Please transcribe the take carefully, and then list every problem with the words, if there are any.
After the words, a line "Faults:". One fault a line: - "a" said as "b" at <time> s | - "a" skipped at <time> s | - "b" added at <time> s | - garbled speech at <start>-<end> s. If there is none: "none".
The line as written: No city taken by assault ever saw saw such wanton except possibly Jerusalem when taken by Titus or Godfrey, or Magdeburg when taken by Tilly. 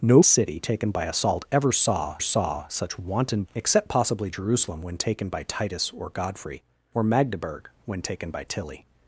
No city taken by assault ever saw saw such wanton except possibly Jerusalem when taken by Titus or Godfrey, or Magdeburg when taken by Tilly.
Faults:
none